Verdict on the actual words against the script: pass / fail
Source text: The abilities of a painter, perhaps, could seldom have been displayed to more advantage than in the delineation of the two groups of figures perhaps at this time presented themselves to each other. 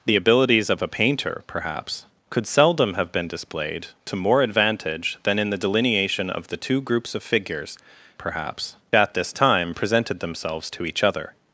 pass